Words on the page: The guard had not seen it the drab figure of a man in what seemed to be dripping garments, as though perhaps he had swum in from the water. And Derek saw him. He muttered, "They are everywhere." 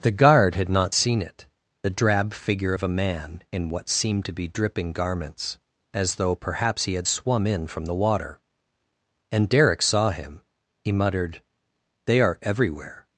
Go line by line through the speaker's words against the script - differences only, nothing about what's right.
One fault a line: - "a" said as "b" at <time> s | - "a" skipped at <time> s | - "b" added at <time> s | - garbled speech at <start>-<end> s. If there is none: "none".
none